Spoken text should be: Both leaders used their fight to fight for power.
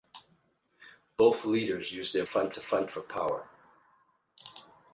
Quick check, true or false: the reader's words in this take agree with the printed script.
true